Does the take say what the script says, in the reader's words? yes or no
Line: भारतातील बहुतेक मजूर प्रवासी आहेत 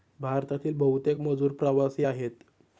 yes